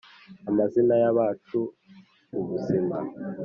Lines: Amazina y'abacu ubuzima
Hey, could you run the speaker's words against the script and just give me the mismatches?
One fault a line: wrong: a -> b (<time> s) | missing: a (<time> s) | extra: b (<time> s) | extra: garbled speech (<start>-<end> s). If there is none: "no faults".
no faults